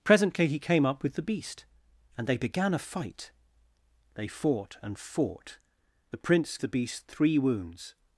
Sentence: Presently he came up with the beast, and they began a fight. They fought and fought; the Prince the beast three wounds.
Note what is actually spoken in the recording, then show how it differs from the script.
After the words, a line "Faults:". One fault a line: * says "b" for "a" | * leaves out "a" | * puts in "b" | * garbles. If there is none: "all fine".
Presently he came up with the beast, and they began a fight. They fought and fought; the Prince the beast three wounds.
Faults:
all fine